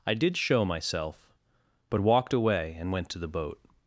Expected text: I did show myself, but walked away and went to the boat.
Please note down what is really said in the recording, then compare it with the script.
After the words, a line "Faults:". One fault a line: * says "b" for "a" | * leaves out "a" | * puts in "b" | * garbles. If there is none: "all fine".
I did show myself, but walked away and went to the boat.
Faults:
all fine